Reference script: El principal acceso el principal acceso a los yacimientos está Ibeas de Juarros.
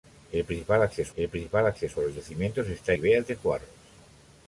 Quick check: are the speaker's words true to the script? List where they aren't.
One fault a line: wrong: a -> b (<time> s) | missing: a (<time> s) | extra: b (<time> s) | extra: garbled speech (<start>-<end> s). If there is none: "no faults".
no faults